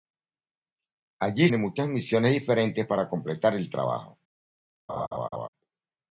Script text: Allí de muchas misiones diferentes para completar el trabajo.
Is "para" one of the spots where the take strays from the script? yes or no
no